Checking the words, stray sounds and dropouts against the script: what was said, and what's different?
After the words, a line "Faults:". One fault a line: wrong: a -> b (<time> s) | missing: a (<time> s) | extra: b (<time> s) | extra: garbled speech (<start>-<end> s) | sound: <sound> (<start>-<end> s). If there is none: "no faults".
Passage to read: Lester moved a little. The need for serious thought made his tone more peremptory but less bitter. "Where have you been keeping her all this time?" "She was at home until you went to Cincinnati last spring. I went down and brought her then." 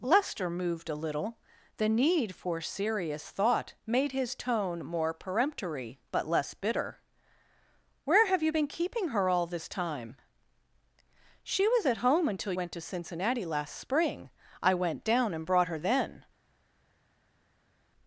Lester moved a little. The need for serious thought made his tone more peremptory but less bitter. "Where have you been keeping her all this time?" "She was at home until went to Cincinnati last spring. I went down and brought her then."
Faults:
missing: you (12.5 s)